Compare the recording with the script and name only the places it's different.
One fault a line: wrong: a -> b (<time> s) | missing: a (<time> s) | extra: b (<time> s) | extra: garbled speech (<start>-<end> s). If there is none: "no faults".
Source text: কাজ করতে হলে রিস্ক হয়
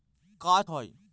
missing: করতে হলে রিস্ক (0.7 s)